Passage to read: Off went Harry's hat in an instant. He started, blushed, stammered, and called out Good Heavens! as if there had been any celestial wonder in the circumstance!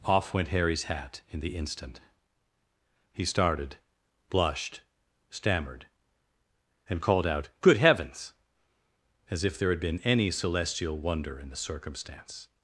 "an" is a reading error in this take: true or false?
true